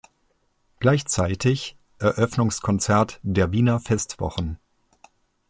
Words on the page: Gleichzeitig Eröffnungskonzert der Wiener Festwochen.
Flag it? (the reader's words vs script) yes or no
no